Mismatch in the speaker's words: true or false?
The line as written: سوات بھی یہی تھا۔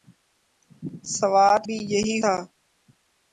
false